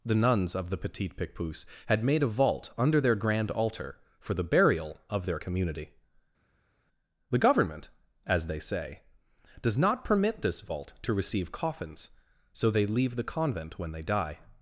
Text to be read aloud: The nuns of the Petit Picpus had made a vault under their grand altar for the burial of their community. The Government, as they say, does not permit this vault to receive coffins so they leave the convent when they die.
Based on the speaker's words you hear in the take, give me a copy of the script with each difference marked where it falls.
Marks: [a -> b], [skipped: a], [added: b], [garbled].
The nuns of the Petit Picpus had made a vault under their grand altar for the burial of their community. The Government, as they say, does not permit this vault to receive coffins so they leave the convent when they die.